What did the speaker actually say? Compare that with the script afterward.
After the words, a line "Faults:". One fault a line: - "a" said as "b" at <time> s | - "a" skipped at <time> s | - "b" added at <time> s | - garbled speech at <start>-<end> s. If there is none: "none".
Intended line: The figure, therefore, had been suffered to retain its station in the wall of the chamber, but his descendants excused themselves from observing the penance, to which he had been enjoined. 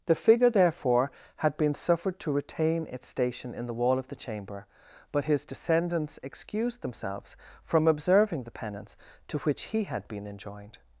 The figure, therefore, had been suffered to retain its station in the wall of the chamber, but his descendants excused themselves from observing the penance, to which he had been enjoined.
Faults:
none